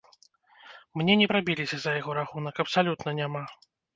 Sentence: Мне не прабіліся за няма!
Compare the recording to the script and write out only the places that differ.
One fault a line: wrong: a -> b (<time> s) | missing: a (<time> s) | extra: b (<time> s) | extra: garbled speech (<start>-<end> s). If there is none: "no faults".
extra: яго рахунак абсалютна (2.0 s)